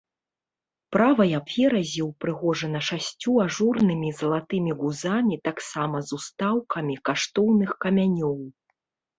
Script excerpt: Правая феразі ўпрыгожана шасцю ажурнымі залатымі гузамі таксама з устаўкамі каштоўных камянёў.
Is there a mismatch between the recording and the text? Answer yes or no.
no